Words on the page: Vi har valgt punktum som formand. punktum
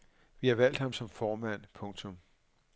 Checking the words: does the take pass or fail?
fail